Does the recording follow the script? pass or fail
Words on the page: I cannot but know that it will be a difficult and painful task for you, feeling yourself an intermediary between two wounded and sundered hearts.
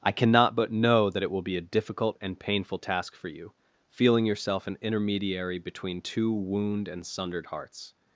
fail